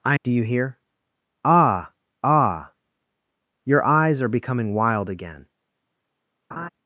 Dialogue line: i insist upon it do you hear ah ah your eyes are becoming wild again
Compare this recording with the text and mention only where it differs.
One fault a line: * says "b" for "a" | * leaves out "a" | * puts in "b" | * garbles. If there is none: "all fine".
* leaves out "insist upon it"